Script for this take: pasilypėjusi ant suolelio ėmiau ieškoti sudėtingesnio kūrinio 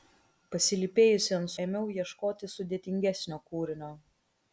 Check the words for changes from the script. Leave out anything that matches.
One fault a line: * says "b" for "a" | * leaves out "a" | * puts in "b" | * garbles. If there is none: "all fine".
* leaves out "suolelio"